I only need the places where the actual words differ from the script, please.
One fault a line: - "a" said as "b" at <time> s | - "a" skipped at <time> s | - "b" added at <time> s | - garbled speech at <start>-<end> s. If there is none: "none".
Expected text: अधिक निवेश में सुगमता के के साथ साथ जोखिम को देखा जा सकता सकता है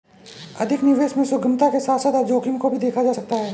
- "के" skipped at 1.8 s
- "भी" added at 2.7 s
- "सकता" skipped at 3.3 s